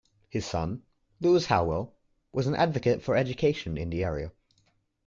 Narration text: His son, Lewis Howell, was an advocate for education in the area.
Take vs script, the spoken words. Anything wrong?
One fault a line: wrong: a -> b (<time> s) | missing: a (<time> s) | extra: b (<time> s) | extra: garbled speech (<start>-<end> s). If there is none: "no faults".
no faults